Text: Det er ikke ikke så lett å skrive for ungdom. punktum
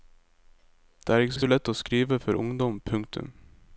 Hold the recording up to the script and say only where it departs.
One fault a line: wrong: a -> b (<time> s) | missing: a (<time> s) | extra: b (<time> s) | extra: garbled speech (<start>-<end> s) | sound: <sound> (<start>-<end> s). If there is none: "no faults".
no faults